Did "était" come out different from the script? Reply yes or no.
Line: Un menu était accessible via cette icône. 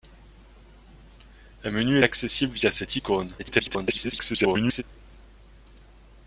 yes